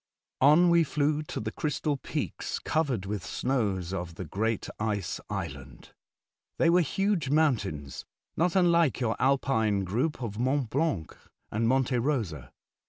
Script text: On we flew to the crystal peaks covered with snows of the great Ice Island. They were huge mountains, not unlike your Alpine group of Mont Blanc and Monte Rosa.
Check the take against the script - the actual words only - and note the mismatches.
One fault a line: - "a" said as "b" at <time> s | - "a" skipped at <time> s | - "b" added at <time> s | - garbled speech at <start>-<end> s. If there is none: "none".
none